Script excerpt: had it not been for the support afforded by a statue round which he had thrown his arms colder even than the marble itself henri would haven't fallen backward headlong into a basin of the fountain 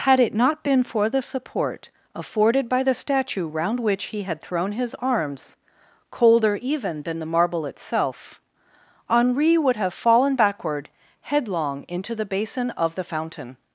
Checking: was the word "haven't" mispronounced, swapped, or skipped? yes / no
yes